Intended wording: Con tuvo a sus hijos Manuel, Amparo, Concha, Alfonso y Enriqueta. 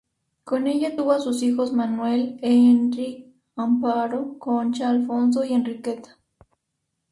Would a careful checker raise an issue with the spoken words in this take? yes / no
yes